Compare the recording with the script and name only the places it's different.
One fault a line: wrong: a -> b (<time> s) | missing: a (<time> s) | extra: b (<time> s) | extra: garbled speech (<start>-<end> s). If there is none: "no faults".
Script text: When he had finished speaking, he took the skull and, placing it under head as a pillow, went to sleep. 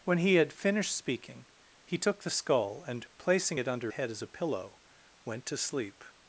no faults